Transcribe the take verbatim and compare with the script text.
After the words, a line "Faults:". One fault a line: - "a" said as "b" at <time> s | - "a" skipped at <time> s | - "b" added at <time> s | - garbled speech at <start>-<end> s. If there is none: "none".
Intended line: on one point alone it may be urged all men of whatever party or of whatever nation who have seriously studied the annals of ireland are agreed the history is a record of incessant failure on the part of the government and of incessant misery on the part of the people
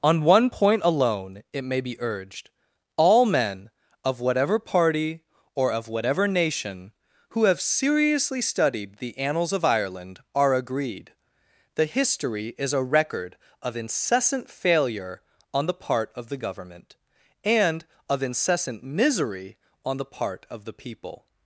on one point alone it may be urged all men of whatever party or of whatever nation who have seriously studied the annals of ireland are agreed the history is a record of incessant failure on the part of the government and of incessant misery on the part of the people
Faults:
none